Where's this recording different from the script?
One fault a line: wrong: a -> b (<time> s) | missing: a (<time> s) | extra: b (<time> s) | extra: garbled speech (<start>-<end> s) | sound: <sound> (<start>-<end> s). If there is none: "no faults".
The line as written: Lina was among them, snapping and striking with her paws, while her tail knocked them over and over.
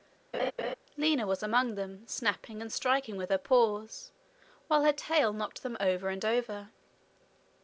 sound: laugh (0.3-0.8 s)